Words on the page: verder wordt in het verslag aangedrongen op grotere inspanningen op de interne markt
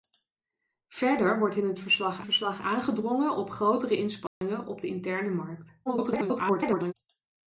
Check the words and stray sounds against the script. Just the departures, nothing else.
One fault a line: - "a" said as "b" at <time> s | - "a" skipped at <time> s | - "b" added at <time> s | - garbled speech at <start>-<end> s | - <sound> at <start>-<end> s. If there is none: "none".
- "verslag" added at 2.2 s
- dropout at 4.3-4.4 s
- garbled speech at 5.9-6.9 s